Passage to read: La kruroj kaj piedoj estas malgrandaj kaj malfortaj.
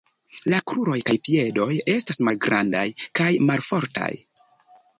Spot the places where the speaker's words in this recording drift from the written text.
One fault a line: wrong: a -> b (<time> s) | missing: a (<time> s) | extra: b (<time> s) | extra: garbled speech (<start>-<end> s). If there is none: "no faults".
no faults